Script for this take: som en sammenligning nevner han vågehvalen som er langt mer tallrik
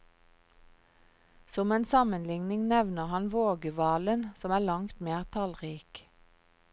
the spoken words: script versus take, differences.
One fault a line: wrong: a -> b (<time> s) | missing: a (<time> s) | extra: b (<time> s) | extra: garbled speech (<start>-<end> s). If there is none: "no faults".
no faults